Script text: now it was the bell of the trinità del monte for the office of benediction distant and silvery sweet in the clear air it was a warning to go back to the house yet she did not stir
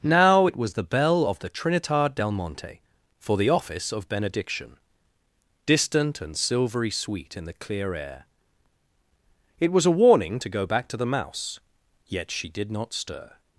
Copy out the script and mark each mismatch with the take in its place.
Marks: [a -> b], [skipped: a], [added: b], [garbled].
now it was the bell of the trinità del monte for the office of benediction distant and silvery sweet in the clear air it was a warning to go back to the [house -> mouse] yet she did not stir